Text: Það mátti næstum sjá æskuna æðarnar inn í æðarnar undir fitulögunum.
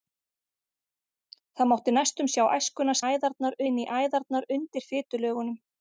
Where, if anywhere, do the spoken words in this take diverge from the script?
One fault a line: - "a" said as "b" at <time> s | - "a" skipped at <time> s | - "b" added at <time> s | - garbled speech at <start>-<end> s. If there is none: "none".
none